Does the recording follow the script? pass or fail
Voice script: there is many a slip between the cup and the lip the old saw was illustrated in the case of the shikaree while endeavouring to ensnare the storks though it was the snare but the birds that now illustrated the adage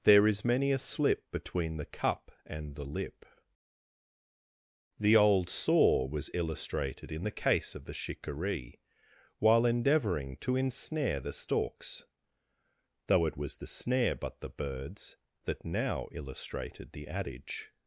pass